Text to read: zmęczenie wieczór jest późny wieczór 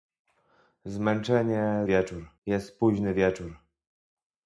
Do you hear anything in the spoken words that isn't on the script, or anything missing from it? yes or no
no